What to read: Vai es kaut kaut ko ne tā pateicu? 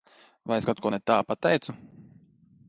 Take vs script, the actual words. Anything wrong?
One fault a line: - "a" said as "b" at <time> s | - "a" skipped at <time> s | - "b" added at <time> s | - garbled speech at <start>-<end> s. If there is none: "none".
- "kaut" skipped at 0.8 s